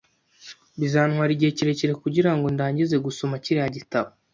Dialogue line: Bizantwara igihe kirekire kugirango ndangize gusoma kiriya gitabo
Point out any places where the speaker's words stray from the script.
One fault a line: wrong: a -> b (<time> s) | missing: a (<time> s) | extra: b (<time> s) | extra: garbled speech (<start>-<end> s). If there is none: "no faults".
no faults